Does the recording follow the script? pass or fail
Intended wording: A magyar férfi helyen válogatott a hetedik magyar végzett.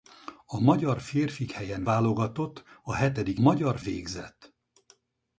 pass